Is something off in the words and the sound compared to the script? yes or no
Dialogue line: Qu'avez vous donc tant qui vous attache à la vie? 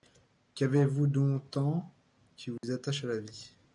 yes